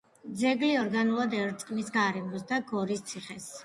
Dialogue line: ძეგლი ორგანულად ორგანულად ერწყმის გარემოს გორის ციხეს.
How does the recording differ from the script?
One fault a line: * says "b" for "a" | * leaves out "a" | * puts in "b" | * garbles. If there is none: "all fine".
* leaves out "ორგანულად"
* puts in "და"